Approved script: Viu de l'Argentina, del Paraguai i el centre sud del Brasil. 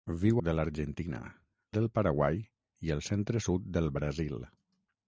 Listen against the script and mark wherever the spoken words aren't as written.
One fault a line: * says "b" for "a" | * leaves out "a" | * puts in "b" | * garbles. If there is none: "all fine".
all fine